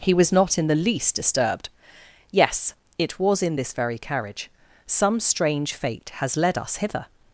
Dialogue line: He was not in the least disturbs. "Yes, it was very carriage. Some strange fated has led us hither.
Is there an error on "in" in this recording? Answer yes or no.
no